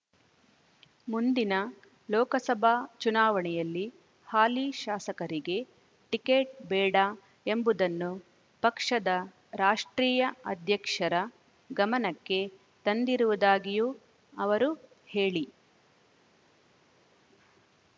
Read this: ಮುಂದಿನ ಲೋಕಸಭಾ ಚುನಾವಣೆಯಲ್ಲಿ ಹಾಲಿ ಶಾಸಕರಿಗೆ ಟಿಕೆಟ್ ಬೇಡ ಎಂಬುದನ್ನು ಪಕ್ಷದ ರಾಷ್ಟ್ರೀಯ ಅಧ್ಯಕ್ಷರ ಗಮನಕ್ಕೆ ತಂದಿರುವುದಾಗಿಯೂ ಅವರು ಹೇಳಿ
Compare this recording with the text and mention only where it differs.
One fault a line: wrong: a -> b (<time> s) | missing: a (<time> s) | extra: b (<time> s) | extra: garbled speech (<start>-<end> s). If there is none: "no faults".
no faults